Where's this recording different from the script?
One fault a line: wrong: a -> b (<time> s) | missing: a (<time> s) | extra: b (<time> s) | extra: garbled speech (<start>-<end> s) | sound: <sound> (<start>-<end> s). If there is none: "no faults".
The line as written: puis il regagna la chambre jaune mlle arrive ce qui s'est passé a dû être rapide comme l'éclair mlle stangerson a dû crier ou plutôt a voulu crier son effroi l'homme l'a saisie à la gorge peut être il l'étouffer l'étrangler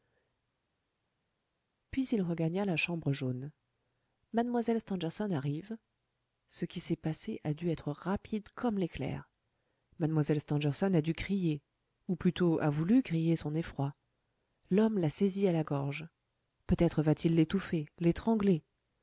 extra: stangerson (4.8 s)
extra: va t (17.0 s)